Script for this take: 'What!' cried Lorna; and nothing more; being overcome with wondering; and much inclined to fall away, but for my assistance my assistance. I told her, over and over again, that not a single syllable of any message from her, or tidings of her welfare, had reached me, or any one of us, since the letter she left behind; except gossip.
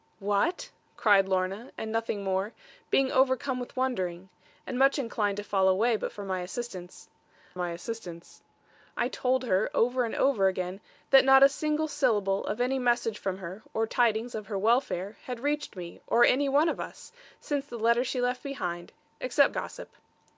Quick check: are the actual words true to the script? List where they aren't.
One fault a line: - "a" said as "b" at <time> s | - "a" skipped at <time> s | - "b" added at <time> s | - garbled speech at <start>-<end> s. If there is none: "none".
none